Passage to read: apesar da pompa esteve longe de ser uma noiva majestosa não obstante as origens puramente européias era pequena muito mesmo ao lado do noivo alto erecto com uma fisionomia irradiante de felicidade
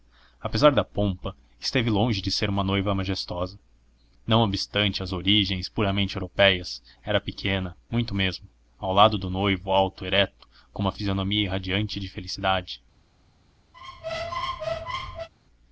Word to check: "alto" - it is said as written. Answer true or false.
true